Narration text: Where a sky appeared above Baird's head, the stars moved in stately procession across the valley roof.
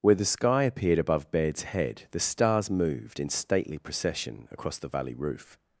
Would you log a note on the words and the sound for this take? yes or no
yes